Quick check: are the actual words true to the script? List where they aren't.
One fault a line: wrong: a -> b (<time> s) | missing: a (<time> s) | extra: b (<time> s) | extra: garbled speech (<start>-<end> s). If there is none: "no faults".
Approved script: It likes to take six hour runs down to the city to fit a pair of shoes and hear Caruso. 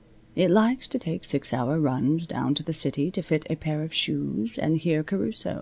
no faults